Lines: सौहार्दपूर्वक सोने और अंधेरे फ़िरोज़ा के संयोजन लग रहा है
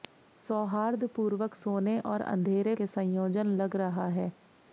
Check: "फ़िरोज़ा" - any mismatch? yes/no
yes